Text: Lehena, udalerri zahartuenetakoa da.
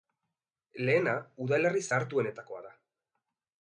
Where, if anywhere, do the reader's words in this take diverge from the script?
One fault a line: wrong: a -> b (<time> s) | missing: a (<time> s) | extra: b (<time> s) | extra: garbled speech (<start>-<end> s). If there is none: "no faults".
no faults